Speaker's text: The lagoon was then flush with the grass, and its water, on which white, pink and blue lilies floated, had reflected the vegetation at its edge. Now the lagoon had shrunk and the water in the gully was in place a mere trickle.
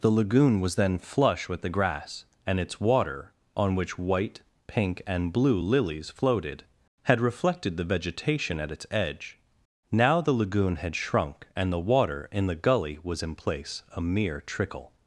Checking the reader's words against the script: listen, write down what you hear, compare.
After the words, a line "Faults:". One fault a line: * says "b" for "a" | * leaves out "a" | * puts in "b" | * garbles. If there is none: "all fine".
The lagoon was then flush with the grass, and its water, on which white, pink and blue lilies floated, had reflected the vegetation at its edge. Now the lagoon had shrunk and the water in the gully was in place a mere trickle.
Faults:
all fine